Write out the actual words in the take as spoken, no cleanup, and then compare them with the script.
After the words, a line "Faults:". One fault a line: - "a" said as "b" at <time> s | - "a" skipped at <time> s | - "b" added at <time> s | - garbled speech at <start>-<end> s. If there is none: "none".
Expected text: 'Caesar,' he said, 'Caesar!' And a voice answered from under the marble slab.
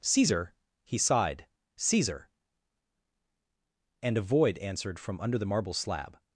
'Caesar,' he sighed, 'Caesar!' And a void answered from under the marble slab.
Faults:
- "said" said as "sighed" at 1.0 s
- "voice" said as "void" at 4.2 s